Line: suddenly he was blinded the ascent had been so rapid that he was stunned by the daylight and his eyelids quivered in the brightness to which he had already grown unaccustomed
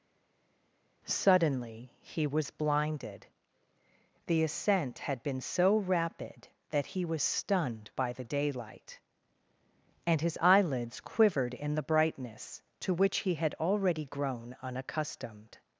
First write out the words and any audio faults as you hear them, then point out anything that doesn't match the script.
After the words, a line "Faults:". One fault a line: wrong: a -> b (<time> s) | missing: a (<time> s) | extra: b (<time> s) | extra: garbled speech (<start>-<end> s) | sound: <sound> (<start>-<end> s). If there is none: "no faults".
suddenly he was blinded the ascent had been so rapid that he was stunned by the daylight and his eyelids quivered in the brightness to which he had already grown unaccustomed
Faults:
no faults